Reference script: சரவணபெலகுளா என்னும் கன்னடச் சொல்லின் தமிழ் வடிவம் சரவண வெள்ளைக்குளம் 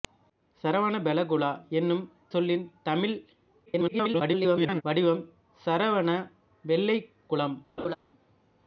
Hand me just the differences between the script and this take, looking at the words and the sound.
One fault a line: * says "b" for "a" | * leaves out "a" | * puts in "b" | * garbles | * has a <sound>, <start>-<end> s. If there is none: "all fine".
* leaves out "கன்னடச்"
* garbles
* has a laugh, 7.8-8.0 s